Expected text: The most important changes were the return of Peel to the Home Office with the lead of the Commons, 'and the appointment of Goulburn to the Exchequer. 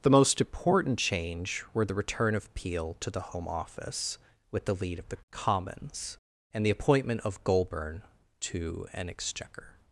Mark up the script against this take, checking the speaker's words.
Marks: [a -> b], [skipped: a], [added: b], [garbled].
The most important [changes -> change] were the return of Peel to the Home Office with the lead of the Commons, 'and the appointment of Goulburn to [the -> an] Exchequer.